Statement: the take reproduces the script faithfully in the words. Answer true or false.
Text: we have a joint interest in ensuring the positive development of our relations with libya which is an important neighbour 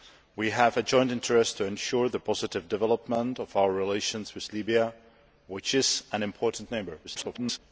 false